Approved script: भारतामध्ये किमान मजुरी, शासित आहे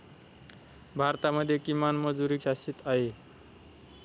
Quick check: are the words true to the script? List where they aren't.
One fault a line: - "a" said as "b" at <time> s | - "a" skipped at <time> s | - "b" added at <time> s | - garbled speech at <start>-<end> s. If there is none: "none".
none